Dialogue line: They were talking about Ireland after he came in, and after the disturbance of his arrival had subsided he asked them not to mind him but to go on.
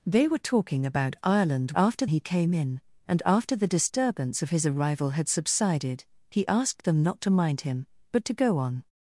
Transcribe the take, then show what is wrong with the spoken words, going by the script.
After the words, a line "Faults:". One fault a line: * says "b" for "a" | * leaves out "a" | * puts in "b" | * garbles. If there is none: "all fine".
They were talking about Ireland after he came in, and after the disturbance of his arrival had subsided he asked them not to mind him but to go on.
Faults:
all fine